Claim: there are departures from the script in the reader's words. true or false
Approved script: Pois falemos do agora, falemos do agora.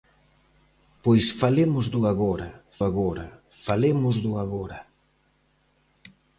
true